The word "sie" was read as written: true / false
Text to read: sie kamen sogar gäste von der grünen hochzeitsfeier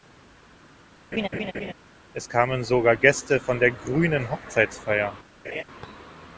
false